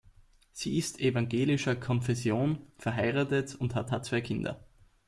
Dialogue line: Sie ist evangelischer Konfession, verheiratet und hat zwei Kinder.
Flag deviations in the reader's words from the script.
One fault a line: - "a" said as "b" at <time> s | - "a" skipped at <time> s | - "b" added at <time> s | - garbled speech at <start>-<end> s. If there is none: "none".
- "hat" added at 3.9 s